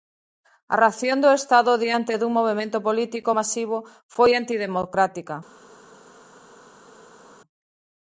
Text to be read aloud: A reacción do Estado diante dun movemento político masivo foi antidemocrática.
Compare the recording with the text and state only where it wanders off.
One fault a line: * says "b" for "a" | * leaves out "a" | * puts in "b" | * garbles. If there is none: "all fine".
all fine